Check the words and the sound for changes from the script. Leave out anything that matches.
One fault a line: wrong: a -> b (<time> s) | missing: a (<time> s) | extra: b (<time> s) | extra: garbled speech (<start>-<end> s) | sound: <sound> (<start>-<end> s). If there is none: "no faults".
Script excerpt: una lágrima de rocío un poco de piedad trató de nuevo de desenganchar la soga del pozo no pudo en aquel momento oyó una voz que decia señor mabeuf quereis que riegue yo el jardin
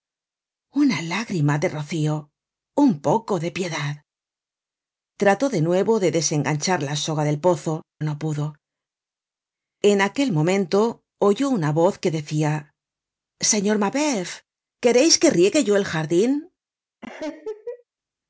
sound: laugh (17.0-17.8 s)